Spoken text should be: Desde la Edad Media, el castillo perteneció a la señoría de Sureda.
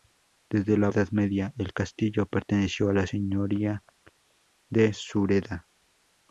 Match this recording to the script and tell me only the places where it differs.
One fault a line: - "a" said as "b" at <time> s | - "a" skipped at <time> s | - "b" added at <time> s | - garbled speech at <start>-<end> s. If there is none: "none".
none